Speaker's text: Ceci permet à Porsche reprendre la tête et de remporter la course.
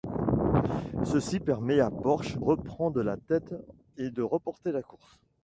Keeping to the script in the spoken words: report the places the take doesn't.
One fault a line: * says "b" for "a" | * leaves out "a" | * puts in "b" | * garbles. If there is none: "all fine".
all fine